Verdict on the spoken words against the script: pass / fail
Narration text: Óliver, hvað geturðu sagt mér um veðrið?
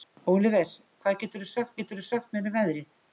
fail